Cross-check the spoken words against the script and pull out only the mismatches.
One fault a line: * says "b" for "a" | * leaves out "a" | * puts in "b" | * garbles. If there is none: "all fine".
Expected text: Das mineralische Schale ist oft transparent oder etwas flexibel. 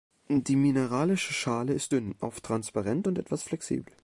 * says "Die" for "Das"
* puts in "dünn"
* says "und" for "oder"